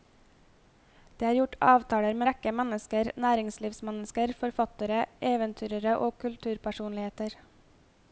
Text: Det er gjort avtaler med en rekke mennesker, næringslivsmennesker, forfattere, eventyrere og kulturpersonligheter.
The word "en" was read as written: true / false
false